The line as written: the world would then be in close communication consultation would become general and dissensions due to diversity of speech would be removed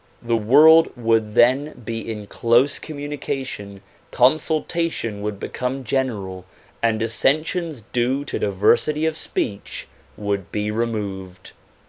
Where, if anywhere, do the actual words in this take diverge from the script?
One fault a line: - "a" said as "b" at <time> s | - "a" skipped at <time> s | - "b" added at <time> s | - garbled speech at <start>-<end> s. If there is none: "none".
none